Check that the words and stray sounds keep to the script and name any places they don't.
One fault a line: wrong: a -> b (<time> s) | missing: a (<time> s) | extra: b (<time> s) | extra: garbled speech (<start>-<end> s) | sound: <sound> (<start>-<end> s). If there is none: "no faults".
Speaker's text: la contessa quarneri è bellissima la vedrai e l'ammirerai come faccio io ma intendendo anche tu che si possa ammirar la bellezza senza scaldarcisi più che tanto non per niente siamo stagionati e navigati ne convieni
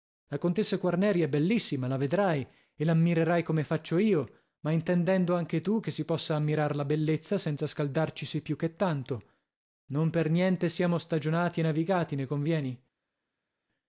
no faults